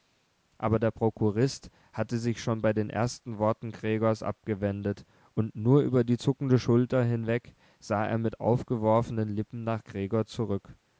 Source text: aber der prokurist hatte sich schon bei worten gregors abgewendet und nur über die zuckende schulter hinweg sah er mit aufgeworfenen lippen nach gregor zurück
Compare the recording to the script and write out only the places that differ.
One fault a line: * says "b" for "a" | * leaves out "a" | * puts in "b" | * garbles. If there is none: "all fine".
* puts in "den ersten"